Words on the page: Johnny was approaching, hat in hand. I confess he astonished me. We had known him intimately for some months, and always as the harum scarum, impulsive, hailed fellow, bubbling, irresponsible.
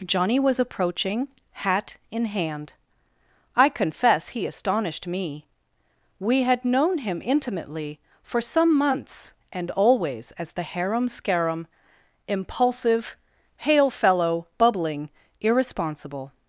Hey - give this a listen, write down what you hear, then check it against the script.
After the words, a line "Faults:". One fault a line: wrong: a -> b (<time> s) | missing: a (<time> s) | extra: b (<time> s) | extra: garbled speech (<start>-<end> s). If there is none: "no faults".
Johnny was approaching, hat in hand. I confess he astonished me. We had known him intimately for some months, and always as the harum scarum, impulsive, hail fellow, bubbling, irresponsible.
Faults:
wrong: hailed -> hail (13.6 s)